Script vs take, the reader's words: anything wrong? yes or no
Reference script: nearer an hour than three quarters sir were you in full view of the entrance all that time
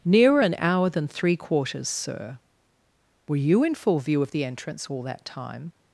no